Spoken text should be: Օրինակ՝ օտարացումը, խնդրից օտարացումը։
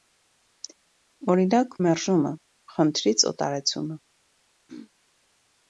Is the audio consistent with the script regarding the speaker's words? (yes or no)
no